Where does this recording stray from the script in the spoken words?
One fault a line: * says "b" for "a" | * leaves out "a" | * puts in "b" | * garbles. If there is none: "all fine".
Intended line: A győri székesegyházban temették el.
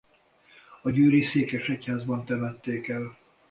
all fine